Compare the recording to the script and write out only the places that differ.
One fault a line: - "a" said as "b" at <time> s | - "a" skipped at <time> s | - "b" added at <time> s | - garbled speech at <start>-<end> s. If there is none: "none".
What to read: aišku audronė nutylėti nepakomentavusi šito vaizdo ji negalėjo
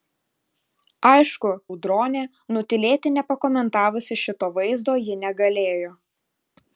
none